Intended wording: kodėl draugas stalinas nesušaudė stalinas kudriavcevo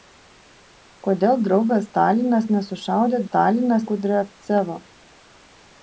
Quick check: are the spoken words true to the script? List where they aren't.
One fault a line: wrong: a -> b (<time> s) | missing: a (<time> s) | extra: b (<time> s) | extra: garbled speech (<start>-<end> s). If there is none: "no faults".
no faults